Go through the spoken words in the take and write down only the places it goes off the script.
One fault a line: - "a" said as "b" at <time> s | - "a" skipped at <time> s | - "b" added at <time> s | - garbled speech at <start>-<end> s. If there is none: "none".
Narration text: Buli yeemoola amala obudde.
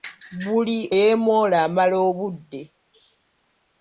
none